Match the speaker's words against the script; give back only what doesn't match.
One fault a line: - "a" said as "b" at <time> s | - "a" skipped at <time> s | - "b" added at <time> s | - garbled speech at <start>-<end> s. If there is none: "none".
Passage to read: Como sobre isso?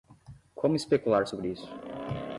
- "especular" added at 0.8 s